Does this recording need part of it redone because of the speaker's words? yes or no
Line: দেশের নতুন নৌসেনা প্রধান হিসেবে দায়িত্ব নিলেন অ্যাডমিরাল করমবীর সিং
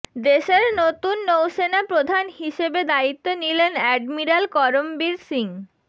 no